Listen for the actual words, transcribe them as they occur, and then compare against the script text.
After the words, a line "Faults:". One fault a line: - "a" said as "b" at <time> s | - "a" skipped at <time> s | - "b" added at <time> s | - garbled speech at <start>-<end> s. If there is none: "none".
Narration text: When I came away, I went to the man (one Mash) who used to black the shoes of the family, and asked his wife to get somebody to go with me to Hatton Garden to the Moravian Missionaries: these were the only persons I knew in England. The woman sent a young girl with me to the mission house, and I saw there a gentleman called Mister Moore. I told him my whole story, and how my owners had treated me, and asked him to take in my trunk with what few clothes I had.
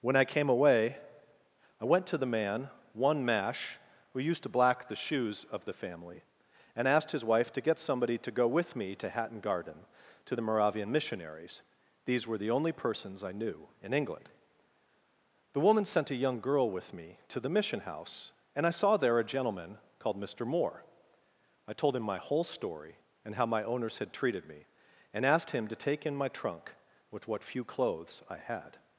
When I came away, I went to the man (one Mash) who used to black the shoes of the family, and asked his wife to get somebody to go with me to Hatton Garden to the Moravian Missionaries: these were the only persons I knew in England. The woman sent a young girl with me to the mission house, and I saw there a gentleman called Mister Moore. I told him my whole story, and how my owners had treated me, and asked him to take in my trunk with what few clothes I had.
Faults:
none